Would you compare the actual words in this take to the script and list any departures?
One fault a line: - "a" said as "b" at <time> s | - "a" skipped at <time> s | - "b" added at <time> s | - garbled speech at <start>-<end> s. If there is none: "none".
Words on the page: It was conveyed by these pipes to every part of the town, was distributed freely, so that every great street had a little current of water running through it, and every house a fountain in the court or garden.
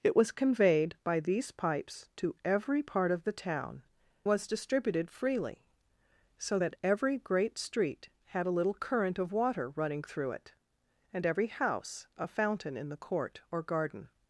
none